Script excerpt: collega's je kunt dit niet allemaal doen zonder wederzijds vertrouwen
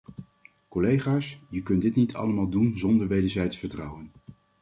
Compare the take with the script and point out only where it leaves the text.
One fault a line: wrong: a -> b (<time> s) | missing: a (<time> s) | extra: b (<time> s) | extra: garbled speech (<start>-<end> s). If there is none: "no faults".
no faults